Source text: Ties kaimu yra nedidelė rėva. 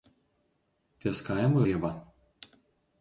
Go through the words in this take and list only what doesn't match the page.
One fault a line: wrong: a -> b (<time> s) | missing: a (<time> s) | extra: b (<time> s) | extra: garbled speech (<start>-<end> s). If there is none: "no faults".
missing: yra nedidelė (1.6 s)